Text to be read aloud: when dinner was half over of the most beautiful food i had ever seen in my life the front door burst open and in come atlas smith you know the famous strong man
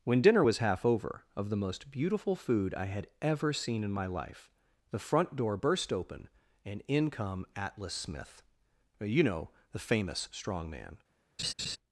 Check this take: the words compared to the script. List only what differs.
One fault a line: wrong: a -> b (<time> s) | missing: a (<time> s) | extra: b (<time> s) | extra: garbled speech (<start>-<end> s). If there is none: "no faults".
no faults